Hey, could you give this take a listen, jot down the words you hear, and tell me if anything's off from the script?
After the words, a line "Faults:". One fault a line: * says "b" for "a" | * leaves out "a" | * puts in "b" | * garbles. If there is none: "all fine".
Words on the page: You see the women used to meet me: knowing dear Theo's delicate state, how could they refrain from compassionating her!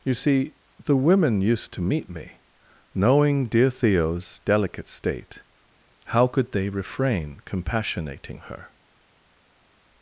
You see the women used to meet me: knowing dear Theo's delicate state, how could they refrain compassionating her!
Faults:
* leaves out "from"